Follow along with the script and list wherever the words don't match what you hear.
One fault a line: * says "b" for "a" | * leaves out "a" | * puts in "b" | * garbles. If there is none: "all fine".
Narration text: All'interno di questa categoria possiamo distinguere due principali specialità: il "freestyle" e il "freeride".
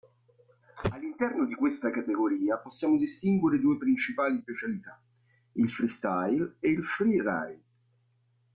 all fine